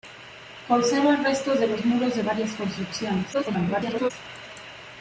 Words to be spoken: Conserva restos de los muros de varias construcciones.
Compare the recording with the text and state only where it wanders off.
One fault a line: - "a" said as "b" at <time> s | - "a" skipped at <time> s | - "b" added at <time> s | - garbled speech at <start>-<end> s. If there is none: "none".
- garbled speech at 3.3-4.1 s